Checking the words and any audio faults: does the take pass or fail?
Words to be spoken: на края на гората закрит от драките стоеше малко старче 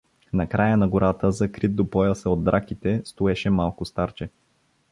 fail